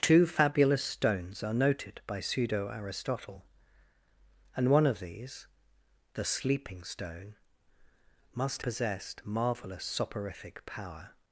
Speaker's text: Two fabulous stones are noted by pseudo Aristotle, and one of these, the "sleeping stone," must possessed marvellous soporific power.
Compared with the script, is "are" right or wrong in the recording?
right